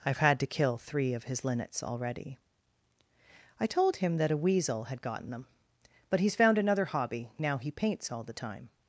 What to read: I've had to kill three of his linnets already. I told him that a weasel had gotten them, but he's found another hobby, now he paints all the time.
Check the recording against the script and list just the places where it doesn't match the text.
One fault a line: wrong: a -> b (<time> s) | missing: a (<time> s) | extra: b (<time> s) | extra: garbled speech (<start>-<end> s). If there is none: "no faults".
no faults